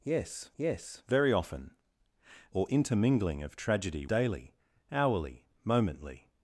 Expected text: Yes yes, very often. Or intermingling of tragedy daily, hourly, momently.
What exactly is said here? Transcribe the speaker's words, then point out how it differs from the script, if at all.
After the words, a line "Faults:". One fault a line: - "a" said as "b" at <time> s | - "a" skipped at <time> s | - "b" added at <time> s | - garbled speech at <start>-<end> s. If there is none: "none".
Yes yes, very often. Or intermingling of tragedy daily, hourly, momently.
Faults:
none